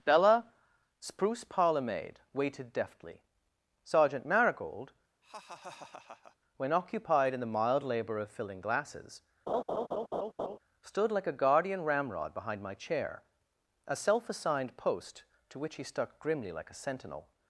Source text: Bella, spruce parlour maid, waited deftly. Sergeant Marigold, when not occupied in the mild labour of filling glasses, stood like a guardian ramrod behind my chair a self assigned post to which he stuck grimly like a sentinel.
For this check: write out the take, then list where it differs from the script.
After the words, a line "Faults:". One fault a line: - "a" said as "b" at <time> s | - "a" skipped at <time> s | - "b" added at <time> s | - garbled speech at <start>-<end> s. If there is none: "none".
Bella, spruce parlour maid, waited deftly. Sergeant Marigold, when occupied in the mild labour of filling glasses, stood like a guardian ramrod behind my chair a self assigned post to which he stuck grimly like a sentinel.
Faults:
- "not" skipped at 6.7 s